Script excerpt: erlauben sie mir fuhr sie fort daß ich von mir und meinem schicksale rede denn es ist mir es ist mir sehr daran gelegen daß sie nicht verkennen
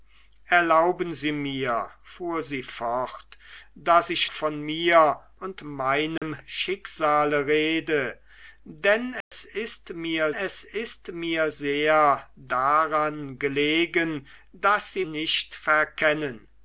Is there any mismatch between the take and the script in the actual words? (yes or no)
no